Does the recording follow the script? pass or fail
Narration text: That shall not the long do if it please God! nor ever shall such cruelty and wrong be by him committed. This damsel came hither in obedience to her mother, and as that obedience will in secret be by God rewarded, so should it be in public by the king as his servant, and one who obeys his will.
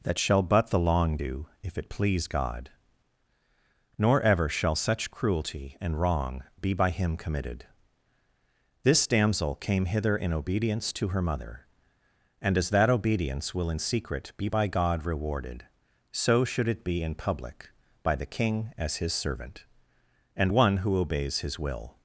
fail